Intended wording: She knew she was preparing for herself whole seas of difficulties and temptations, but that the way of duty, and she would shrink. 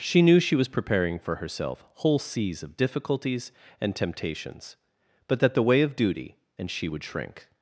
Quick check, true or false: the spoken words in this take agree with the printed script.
true